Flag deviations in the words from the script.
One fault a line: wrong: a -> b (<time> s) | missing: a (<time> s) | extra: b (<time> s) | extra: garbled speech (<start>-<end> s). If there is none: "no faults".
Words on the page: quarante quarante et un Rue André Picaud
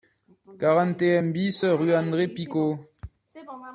missing: quarante (1.0 s)
extra: BIS (1.3 s)